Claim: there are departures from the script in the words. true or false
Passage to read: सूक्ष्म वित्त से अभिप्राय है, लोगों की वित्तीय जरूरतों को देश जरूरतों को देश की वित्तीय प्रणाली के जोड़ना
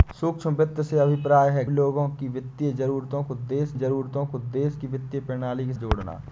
false